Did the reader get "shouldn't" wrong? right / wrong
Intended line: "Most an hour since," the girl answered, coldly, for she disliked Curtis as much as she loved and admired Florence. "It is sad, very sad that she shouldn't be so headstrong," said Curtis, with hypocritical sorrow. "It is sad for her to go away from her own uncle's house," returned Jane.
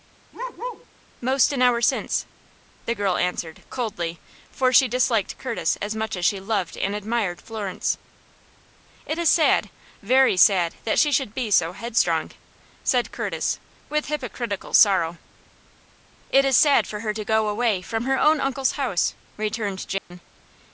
wrong